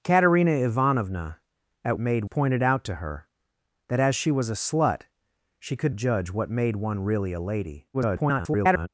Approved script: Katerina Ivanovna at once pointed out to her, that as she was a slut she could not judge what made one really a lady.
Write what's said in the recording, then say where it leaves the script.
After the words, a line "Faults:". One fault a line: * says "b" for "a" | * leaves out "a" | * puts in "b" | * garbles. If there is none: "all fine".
Katerina Ivanovna at made pointed out to her, that as she was a slut she could judge what made one really a lady. [garbled]
Faults:
* says "made" for "once"
* leaves out "not"
* garbles